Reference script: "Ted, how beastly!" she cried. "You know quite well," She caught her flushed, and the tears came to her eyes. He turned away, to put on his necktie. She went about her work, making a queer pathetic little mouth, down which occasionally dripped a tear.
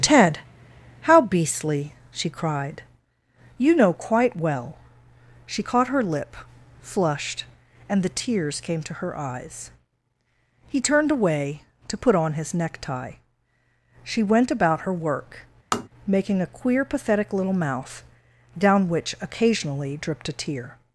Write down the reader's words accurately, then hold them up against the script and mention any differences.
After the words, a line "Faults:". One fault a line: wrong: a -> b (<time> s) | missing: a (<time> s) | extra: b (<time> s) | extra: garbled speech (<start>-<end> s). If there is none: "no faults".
"Ted, how beastly!" she cried. "You know quite well," She caught her lip, flushed, and the tears came to her eyes. He turned away, to put on his necktie. She went about her work, making a queer pathetic little mouth, down which occasionally dripped a tear.
Faults:
extra: lip (6.0 s)